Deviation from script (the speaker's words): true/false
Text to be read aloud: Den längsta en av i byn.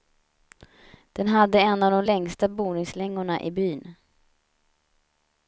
true